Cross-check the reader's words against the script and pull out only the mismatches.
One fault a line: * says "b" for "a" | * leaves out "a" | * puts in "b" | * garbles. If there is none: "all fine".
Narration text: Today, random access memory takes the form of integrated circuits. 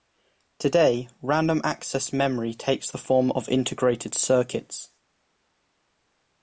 all fine